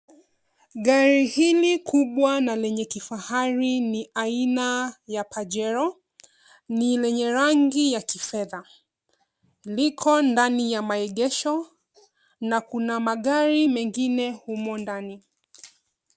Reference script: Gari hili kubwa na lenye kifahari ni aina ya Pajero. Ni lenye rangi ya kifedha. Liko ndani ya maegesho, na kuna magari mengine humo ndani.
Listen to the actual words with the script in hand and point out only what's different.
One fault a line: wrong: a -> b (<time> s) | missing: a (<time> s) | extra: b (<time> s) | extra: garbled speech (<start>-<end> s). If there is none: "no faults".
no faults